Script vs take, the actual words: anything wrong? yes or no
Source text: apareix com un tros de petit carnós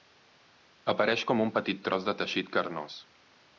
yes